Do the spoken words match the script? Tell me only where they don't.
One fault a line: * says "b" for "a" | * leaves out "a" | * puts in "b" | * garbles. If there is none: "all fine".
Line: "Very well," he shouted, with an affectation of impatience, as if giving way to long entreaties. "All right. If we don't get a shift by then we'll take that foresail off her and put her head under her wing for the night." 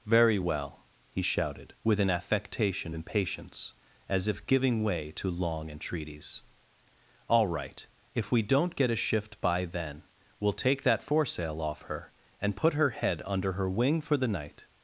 * leaves out "of"